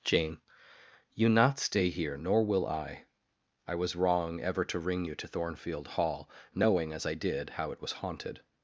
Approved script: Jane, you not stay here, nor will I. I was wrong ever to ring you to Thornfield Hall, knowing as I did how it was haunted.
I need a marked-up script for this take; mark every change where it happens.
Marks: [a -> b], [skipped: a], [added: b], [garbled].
Jane, you not stay here, nor will I. I was wrong ever to ring you to Thornfield Hall, knowing as I did how it was haunted.